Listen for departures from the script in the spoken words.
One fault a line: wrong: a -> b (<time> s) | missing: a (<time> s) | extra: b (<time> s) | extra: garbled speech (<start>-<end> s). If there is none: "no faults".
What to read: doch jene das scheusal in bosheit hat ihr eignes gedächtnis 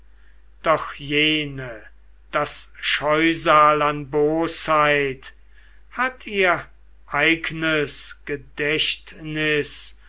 wrong: in -> an (3.8 s)